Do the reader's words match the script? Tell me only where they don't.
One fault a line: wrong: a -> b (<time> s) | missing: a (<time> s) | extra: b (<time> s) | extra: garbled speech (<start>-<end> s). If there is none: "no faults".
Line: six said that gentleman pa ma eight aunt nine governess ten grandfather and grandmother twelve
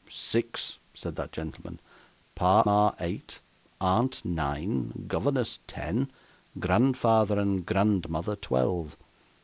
no faults